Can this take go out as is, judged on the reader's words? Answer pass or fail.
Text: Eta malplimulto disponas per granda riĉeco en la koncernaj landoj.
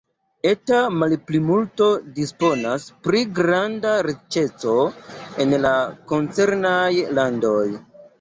fail